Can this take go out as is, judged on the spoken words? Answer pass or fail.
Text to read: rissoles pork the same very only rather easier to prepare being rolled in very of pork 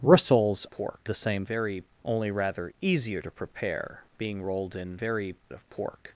pass